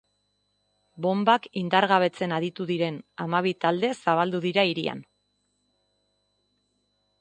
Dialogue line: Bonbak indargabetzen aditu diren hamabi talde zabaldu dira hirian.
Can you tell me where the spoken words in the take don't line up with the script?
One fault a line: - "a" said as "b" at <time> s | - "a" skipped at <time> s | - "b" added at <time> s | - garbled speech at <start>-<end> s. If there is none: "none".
none